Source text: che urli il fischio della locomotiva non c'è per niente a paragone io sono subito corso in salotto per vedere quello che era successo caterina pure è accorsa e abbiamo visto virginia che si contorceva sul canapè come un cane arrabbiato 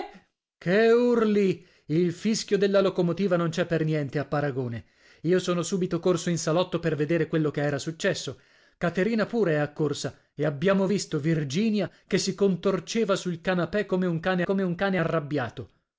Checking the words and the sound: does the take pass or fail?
fail